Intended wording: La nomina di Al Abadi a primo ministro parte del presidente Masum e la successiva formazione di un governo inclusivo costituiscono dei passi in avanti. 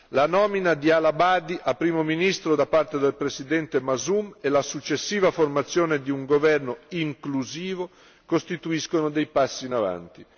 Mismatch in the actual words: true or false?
true